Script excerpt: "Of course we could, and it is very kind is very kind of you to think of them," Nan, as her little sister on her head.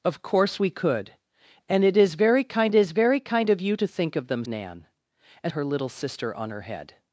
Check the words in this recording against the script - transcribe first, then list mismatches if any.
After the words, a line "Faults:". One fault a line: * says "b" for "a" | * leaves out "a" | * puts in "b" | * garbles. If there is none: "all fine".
"Of course we could, and it is very kind is very kind of you to think of them," Nan, as her little sister on her head.
Faults:
all fine